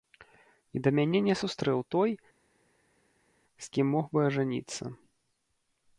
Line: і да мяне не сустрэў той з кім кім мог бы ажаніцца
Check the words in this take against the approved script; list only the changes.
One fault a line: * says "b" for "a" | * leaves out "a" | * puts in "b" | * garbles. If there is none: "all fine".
* leaves out "кім"